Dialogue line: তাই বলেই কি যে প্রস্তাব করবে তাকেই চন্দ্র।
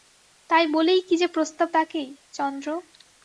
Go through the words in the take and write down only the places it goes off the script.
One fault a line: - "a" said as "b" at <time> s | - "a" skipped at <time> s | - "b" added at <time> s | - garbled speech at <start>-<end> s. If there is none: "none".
- "করবে" skipped at 1.7 s